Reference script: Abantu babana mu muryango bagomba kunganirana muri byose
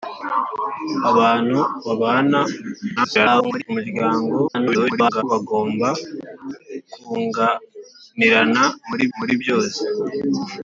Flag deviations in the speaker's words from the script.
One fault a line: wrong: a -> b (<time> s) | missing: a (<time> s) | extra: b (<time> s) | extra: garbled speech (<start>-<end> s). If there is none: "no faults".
extra: garbled speech (3.0-3.6 s)
extra: garbled speech (4.5-5.2 s)
extra: muri (9.2 s)